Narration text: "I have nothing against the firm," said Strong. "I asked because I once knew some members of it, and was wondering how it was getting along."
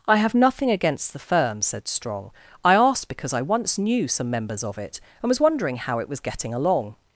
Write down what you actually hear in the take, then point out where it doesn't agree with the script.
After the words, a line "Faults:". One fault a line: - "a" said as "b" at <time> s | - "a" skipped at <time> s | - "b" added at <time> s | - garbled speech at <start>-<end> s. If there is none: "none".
"I have nothing against the firm," said Strong. "I asked because I once knew some members of it, and was wondering how it was getting along."
Faults:
none